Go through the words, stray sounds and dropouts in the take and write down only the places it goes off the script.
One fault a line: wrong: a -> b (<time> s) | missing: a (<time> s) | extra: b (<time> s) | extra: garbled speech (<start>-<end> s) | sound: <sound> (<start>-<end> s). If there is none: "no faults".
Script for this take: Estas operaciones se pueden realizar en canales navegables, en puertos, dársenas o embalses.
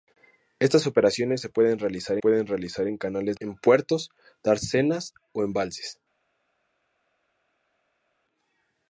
extra: pueden realizar (2.2 s)
missing: navegables (3.4 s)